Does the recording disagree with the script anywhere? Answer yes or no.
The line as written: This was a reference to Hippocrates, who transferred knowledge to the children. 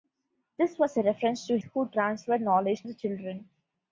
yes